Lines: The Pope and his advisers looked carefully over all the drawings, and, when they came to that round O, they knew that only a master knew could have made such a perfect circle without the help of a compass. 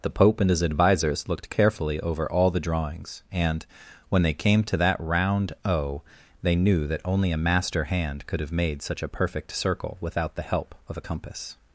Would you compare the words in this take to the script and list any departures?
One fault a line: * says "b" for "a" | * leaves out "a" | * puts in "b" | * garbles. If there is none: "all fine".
* says "hand" for "knew"